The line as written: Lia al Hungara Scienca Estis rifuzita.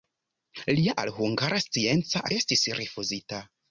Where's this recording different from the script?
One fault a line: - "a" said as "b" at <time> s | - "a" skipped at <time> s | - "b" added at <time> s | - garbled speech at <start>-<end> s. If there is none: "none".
none